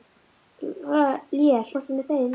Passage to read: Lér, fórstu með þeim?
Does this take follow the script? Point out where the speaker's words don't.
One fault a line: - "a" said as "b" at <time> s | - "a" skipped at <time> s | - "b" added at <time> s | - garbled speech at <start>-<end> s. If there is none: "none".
none